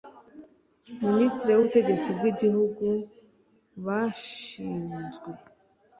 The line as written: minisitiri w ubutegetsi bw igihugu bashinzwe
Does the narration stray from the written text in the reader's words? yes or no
no